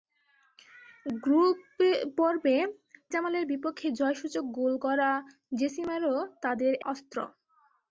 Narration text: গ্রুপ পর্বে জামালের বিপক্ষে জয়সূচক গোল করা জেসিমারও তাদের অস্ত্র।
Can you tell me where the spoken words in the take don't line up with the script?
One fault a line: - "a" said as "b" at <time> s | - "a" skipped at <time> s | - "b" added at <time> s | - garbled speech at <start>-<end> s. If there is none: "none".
none